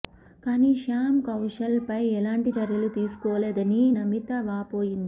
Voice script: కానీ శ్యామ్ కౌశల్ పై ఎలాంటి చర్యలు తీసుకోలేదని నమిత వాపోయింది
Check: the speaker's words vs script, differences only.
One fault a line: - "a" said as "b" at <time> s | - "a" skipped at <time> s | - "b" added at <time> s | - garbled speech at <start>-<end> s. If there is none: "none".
none